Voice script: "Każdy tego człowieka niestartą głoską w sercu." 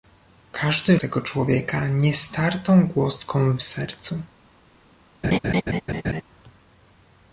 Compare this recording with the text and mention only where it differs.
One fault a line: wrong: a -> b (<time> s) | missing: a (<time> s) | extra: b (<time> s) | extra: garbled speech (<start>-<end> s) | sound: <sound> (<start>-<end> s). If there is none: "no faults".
sound: laugh (5.2-6.2 s)